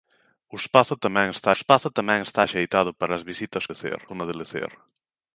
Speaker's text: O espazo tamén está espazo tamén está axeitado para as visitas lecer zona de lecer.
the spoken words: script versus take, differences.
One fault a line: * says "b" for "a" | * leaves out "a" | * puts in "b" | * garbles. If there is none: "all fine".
all fine